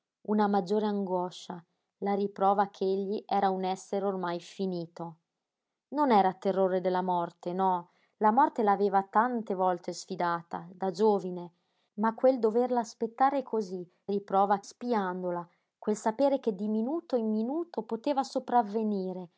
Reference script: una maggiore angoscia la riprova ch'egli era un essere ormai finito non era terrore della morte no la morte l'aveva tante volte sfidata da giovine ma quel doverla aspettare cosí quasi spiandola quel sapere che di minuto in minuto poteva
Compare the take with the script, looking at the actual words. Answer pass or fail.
fail